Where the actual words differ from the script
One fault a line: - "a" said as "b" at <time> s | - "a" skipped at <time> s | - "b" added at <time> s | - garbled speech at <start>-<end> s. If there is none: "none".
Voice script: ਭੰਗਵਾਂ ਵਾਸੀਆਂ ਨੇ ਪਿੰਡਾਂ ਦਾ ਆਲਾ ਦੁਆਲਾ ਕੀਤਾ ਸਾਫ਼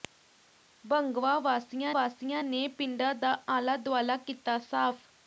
- "ਵਾਸੀਆਂ" added at 1.9 s